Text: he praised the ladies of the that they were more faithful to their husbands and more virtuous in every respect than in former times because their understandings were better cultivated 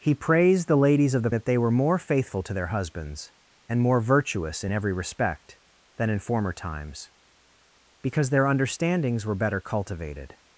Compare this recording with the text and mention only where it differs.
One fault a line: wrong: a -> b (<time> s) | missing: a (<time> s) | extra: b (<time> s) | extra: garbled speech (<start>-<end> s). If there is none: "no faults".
no faults